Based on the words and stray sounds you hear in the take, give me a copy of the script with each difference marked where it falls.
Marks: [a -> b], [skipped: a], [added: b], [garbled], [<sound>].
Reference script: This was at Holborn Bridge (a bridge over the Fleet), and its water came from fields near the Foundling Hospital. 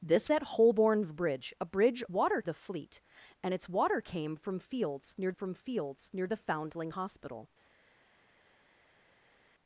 This [skipped: was] at Holborn Bridge (a bridge [over -> water] the Fleet), and its water came from fields near [added: from fields near] the Foundling Hospital.